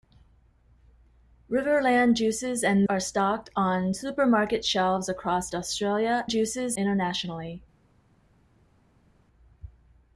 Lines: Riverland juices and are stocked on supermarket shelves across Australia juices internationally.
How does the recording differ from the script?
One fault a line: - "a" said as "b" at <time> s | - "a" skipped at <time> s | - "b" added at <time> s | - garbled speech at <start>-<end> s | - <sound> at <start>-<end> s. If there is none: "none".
none